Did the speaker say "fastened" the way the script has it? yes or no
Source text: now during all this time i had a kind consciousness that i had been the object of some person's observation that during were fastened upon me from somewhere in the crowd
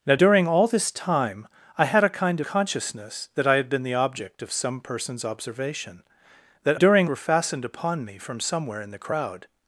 yes